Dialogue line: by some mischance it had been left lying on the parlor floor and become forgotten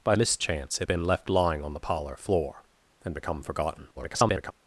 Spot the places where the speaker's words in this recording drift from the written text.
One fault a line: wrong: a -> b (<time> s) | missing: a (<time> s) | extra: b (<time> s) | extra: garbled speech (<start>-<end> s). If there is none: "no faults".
missing: some (0.1 s)
missing: had (0.9 s)
extra: garbled speech (4.0-4.5 s)